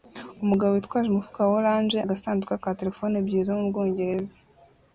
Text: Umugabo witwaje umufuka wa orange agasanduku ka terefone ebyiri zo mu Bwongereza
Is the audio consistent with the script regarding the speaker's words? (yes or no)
yes